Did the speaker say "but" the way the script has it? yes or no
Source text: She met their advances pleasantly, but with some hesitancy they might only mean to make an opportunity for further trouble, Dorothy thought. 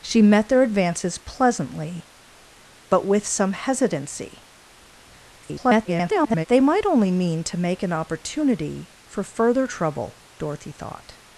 yes